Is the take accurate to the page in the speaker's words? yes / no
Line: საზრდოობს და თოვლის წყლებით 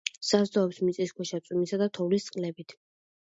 no